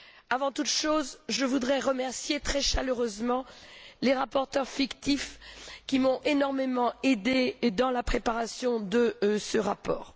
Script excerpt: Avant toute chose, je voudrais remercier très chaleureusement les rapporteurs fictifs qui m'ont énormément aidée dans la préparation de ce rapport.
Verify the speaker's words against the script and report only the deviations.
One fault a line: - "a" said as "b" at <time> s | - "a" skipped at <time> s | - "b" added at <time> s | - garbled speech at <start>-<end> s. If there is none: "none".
none